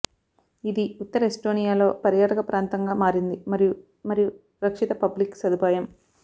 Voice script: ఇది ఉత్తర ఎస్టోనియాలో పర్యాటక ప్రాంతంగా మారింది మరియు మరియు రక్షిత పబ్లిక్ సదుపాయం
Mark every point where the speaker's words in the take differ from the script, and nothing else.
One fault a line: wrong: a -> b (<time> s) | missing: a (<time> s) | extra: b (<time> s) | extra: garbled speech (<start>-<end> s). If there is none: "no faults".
no faults